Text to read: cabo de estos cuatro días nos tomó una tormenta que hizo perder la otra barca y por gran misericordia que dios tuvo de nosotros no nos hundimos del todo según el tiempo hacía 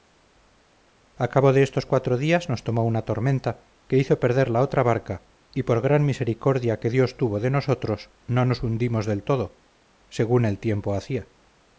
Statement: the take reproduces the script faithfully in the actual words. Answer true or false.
true